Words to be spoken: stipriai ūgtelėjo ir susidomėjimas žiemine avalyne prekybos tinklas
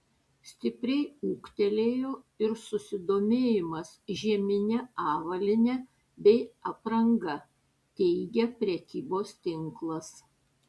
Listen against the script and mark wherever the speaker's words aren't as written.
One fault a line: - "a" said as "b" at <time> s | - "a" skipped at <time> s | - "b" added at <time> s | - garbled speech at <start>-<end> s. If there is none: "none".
- "bei apranga teigia" added at 6.3 s